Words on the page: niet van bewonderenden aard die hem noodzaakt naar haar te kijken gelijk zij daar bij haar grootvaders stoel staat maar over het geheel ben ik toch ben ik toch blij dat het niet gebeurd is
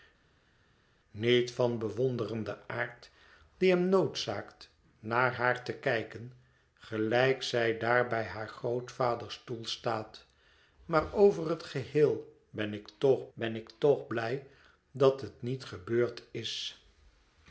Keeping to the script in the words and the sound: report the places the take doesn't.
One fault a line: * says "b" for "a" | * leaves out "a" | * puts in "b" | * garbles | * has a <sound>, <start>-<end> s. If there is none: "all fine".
all fine